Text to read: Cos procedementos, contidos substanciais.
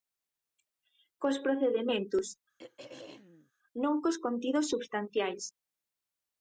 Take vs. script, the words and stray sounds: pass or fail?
fail